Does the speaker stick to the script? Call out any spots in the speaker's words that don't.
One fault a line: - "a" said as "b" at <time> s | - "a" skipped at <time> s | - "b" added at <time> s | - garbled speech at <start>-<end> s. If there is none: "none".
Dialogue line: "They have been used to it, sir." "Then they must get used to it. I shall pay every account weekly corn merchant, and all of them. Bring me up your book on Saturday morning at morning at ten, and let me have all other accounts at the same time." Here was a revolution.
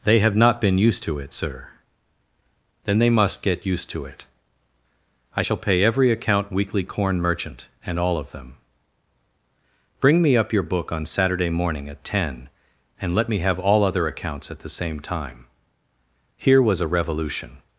- "not" added at 0.3 s
- "morning at" skipped at 12.0 s